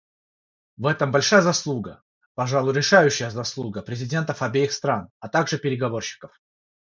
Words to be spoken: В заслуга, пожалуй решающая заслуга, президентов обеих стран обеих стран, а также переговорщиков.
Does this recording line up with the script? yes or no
no